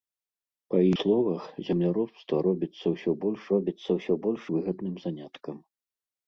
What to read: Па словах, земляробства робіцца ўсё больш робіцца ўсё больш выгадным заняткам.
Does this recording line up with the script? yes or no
yes